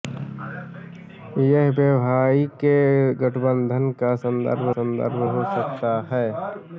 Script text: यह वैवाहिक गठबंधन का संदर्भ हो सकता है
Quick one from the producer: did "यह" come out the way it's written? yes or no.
yes